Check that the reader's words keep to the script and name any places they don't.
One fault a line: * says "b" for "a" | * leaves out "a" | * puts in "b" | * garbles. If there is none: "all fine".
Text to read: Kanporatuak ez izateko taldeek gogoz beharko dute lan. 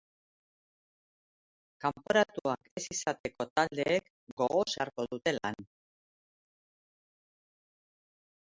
all fine